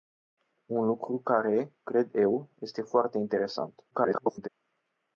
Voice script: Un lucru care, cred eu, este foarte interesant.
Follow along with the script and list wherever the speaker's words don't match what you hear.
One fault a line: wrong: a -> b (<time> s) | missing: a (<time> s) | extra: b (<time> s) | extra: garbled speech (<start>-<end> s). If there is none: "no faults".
extra: garbled speech (3.9-4.5 s)